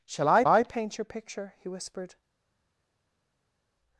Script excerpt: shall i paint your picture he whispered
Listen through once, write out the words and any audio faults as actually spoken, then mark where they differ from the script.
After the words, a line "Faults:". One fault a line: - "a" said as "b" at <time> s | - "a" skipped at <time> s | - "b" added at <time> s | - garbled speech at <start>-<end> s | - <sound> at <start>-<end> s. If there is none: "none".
shall i i paint your picture he whispered
Faults:
- "i" added at 0.5 s